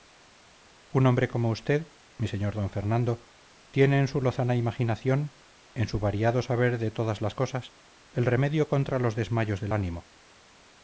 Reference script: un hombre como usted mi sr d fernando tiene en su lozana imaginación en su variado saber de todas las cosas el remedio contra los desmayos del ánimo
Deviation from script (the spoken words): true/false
false